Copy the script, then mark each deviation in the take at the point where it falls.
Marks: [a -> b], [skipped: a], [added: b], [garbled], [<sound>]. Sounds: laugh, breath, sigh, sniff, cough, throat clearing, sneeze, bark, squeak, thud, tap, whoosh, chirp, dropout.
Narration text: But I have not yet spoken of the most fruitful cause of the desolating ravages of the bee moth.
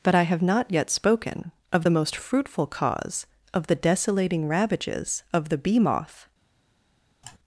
But I have not yet spoken of the most fruitful cause of the desolating ravages of the bee moth. [sigh]